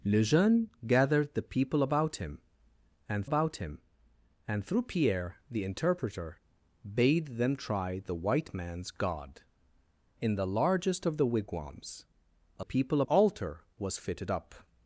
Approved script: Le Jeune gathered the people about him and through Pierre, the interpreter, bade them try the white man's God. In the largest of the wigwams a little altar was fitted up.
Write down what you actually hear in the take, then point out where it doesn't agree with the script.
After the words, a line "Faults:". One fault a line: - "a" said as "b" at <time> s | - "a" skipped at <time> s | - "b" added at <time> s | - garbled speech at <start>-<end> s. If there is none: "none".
Le Jeune gathered the people about him and about him and through Pierre, the interpreter, bade them try the white man's God. In the largest of the wigwams a people altar was fitted up.
Faults:
- "about him and" added at 3.2 s
- "little" said as "people" at 12.6 s